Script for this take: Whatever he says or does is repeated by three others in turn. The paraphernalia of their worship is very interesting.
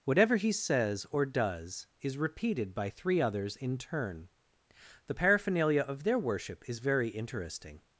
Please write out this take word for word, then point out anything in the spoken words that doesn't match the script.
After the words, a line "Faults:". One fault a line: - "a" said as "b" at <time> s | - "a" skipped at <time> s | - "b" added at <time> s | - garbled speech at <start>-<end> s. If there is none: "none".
Whatever he says or does is repeated by three others in turn. The paraphernalia of their worship is very interesting.
Faults:
none